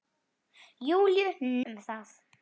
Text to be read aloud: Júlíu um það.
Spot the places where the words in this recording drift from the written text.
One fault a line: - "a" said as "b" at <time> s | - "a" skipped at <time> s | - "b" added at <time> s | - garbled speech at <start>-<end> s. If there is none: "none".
none